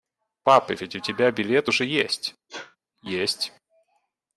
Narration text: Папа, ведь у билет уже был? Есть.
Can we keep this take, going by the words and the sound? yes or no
no